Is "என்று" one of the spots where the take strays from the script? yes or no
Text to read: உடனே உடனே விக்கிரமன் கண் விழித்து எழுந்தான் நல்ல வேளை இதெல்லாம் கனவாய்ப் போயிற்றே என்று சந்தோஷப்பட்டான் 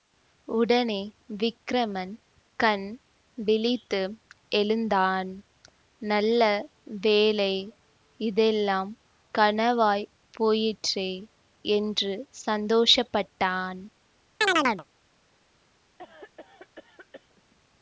no